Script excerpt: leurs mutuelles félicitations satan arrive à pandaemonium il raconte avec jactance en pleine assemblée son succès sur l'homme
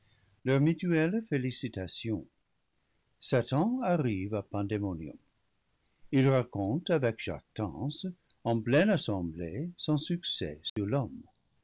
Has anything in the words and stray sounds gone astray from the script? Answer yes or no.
yes